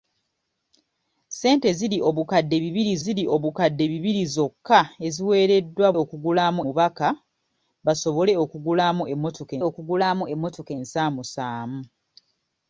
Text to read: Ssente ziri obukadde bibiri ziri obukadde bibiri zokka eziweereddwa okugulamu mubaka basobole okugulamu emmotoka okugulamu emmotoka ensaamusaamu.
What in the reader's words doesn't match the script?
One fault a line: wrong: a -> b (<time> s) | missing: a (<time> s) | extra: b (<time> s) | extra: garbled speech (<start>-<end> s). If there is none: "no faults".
no faults